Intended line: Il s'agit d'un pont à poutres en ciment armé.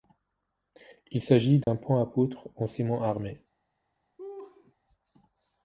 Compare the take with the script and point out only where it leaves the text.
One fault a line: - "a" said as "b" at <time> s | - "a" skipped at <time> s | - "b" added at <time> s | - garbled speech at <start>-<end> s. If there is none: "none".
none